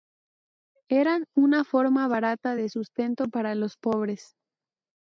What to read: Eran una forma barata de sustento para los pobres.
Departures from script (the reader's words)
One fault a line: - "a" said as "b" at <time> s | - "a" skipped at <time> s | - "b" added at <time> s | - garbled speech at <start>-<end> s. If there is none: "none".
none